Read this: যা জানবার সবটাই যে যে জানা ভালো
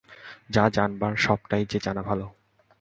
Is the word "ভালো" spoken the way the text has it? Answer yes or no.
yes